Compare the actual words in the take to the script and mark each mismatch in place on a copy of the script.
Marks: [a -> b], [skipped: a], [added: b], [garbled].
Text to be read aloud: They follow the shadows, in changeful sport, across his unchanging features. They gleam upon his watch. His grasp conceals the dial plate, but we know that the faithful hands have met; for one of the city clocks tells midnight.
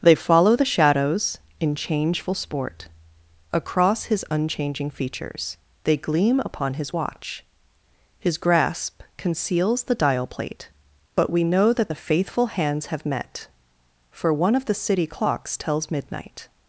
They follow the shadows, in changeful sport, across his unchanging features. They gleam upon his watch. His grasp conceals the dial plate, but we know that the faithful hands have met; for one of the city clocks tells midnight.